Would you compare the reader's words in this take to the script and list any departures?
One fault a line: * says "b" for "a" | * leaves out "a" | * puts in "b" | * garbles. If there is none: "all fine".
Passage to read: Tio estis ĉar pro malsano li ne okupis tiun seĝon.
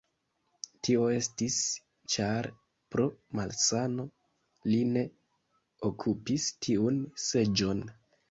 all fine